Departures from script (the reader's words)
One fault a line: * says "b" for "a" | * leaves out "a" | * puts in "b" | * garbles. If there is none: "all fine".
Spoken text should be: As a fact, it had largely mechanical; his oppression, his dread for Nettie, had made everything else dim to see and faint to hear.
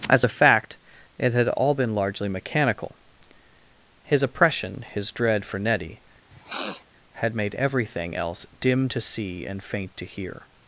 * puts in "all been"